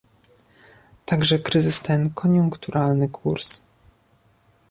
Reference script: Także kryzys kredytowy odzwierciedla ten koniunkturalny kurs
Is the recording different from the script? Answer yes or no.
yes